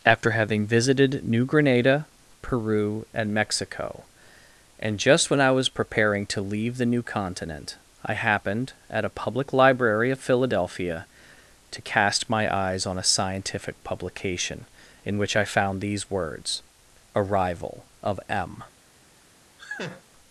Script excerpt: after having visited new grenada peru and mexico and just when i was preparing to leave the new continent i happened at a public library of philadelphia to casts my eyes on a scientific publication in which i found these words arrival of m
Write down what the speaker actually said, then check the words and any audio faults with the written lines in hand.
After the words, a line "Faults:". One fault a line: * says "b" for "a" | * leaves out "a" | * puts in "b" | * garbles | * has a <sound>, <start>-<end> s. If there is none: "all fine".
after having visited new grenada peru and mexico and just when i was preparing to leave the new continent i happened at a public library of philadelphia to cast my eyes on a scientific publication in which i found these words arrival of m
Faults:
* says "cast" for "casts"
* has a laugh, 19.6-20.0 s